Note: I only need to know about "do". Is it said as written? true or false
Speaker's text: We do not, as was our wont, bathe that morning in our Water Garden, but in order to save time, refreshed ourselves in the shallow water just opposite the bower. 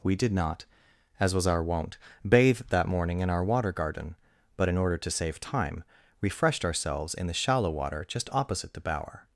false